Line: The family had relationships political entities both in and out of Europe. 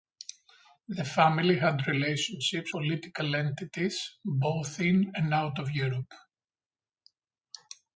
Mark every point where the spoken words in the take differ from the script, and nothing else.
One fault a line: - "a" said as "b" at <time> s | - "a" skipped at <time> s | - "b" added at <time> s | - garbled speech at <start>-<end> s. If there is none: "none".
none